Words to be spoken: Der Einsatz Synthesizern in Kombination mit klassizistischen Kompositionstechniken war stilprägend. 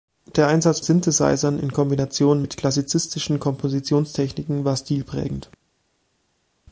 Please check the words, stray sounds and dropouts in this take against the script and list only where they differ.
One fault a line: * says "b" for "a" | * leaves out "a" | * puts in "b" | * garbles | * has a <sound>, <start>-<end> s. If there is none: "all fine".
all fine